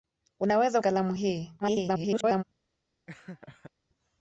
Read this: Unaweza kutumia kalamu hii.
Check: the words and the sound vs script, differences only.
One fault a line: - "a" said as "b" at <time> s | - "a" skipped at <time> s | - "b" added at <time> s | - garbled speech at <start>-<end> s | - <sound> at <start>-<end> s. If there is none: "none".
- "kutumia" skipped at 0.8 s
- garbled speech at 1.6-2.4 s
- laugh at 3.1-3.7 s